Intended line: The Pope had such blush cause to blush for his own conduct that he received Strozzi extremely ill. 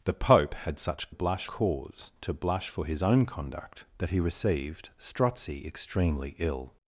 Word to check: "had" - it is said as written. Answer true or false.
true